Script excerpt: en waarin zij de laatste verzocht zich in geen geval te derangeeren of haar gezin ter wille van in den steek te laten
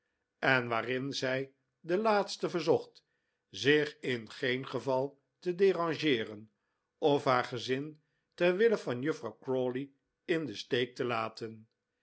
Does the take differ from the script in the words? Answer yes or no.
yes